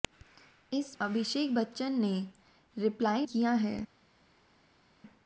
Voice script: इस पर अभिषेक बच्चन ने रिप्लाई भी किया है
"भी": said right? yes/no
no